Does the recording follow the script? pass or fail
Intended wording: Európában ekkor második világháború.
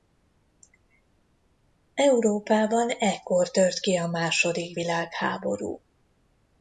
fail